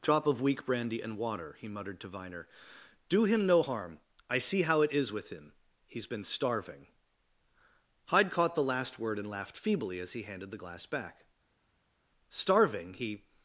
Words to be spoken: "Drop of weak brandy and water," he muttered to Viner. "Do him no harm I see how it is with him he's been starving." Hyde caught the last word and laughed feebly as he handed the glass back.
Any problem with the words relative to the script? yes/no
yes